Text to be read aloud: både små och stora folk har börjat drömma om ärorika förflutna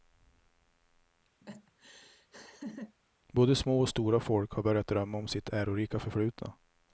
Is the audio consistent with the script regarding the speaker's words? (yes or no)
no